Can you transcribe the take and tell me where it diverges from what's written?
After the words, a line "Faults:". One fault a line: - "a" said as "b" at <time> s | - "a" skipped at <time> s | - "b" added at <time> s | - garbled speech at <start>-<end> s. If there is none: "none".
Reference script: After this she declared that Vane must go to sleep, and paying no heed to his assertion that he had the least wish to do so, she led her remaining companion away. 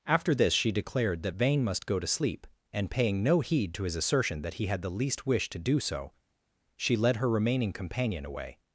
After this she declared that Vane must go to sleep, and paying no heed to his assertion that he had the least wish to do so, she led her remaining companion away.
Faults:
none